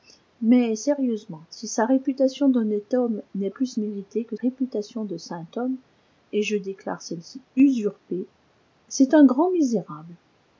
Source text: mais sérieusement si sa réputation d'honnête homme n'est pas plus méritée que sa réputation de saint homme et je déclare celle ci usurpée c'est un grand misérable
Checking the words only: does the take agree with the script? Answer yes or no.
no